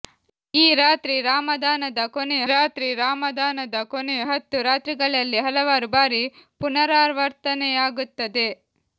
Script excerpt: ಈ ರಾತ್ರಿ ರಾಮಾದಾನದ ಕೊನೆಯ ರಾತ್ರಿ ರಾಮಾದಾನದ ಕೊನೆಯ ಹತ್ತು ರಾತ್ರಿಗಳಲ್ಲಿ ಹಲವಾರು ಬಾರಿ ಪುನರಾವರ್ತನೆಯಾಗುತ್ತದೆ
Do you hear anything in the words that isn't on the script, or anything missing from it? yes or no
no